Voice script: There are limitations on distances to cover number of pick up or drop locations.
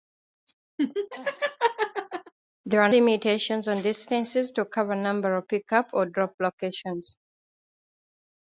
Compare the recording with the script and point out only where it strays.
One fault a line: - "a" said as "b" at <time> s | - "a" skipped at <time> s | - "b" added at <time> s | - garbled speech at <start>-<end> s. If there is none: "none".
none